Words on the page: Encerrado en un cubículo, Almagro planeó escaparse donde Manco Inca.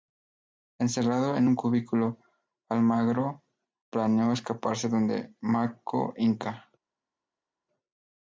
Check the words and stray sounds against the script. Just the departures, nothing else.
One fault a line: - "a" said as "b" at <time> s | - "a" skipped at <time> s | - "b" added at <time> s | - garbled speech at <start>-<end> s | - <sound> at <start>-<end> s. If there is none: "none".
none